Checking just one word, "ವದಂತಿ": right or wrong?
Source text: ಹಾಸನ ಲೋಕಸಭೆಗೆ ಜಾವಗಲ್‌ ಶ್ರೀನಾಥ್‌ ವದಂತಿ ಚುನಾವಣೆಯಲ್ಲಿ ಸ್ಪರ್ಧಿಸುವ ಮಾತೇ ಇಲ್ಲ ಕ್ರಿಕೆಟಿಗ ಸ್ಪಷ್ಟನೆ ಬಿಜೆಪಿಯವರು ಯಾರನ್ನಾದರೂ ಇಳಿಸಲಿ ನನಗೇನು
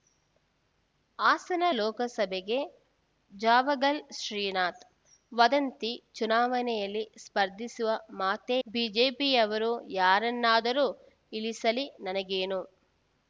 right